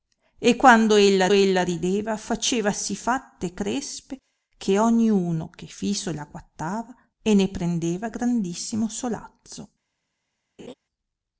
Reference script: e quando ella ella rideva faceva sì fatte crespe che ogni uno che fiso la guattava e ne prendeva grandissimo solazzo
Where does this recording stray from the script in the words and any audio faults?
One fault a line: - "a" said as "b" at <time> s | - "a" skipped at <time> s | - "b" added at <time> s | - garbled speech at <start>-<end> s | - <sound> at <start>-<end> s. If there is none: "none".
- laugh at 10.6-10.7 s